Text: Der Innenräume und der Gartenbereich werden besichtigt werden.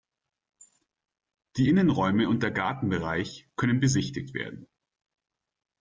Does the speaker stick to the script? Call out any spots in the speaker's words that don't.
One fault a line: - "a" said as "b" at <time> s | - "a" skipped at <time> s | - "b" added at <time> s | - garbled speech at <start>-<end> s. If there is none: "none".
- "Der" said as "Die" at 1.6 s
- "werden" said as "können" at 3.5 s